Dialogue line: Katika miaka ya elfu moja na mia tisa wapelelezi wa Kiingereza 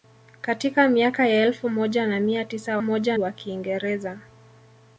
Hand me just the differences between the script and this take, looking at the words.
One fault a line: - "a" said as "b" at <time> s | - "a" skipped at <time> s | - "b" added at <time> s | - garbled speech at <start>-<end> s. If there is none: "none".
- "wapelelezi" said as "moja" at 2.8 s